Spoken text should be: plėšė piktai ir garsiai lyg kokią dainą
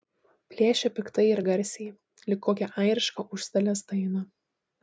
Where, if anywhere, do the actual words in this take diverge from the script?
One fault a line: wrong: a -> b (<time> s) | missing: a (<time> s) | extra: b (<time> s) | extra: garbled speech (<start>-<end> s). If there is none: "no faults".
extra: airišką užstalės (2.8 s)